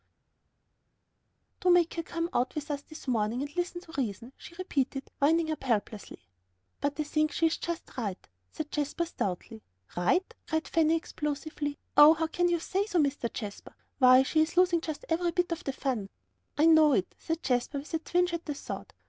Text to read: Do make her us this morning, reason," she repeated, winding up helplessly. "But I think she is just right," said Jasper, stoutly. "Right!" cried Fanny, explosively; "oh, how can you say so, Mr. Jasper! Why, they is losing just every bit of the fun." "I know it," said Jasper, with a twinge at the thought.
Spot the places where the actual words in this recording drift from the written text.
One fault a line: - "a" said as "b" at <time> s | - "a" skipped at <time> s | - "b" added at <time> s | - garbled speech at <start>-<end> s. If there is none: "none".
- "come out with" added at 2.0 s
- "and listen to" added at 3.4 s
- "they" said as "she" at 14.2 s